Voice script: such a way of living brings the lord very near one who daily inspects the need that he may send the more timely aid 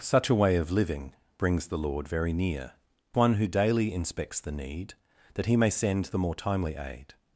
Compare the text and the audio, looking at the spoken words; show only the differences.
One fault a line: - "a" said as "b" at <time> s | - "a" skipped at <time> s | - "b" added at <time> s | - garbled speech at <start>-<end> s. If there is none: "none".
none